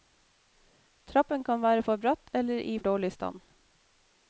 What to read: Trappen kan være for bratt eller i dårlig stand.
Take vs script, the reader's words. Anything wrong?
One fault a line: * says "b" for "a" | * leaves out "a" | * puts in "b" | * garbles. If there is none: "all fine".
all fine